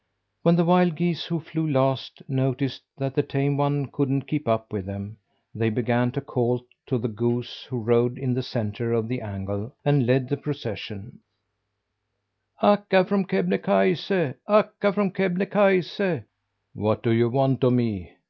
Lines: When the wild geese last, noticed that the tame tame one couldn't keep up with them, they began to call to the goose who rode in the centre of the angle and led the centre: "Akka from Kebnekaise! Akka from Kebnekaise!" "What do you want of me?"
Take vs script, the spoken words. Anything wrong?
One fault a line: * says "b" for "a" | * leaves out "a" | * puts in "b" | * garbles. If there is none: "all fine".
* puts in "who flew"
* leaves out "tame"
* says "procession" for "centre"